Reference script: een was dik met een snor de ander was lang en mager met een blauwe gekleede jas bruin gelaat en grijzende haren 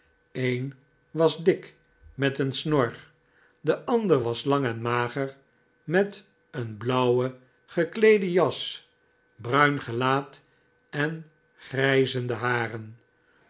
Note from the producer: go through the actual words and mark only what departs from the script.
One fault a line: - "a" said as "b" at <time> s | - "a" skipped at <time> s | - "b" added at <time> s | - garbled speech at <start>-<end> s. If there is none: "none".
none